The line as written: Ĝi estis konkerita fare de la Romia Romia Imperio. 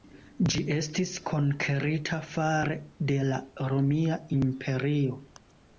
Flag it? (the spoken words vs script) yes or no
yes